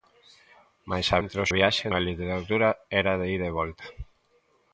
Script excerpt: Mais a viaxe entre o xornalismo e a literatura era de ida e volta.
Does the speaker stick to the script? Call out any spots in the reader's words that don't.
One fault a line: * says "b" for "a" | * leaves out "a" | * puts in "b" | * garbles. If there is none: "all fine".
* leaves out "viaxe"
* says "viaxe" for "xornalismo"